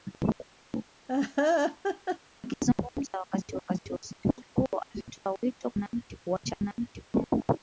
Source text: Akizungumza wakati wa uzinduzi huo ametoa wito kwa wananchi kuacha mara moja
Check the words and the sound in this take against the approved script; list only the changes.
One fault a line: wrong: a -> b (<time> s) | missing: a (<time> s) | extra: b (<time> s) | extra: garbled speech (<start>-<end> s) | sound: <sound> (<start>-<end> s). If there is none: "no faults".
sound: laugh (1.1-2.2 s)
extra: wakati (3.6 s)
missing: kwa (5.7 s)
wrong: mara -> wananchi (6.6 s)